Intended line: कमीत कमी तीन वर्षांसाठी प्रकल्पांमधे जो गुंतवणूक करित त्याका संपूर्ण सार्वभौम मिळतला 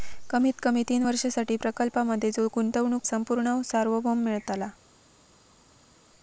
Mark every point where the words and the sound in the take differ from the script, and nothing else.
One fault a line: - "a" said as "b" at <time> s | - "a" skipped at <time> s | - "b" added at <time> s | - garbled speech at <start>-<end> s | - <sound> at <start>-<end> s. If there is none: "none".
- "करित त्याका" skipped at 3.0 s